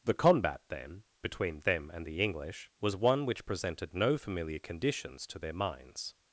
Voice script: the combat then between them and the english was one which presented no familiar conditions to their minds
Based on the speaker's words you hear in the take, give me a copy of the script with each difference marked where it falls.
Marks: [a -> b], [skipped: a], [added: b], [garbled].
the combat then between them and the english was one which presented no familiar conditions to their minds